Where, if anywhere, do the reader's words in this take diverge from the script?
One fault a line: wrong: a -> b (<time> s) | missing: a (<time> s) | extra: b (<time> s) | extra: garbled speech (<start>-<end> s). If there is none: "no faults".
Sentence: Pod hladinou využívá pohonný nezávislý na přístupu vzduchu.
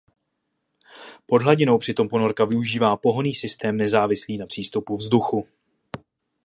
extra: přitom ponorka (1.8 s)
extra: systém (3.3 s)